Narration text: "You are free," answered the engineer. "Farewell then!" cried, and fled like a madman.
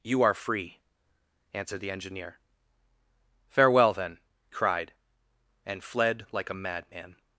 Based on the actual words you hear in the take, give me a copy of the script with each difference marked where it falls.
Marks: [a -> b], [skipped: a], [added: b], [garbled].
"You are free," answered the engineer. "Farewell then!" cried, and fled like a madman.